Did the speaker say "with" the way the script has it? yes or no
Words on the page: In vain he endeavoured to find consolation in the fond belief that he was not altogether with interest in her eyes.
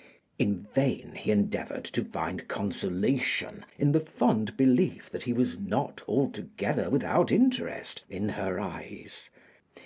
no